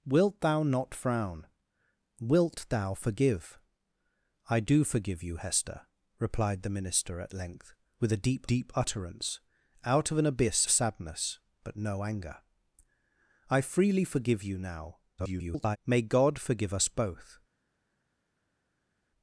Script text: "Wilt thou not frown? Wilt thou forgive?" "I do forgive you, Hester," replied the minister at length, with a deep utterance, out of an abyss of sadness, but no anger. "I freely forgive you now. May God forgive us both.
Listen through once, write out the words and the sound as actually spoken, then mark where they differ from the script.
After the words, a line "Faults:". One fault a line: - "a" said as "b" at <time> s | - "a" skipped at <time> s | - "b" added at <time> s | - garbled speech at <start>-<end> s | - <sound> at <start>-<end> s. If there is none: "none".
"Wilt thou not frown? Wilt thou forgive?" "I do forgive you, Hester," replied the minister at length, with a deep deep utterance, out of an abyss sadness, but no anger. "I freely forgive you now. [garbled] May God forgive us both.
Faults:
- "deep" added at 8.5 s
- "of" skipped at 10.7 s
- garbled speech at 15.2-15.8 s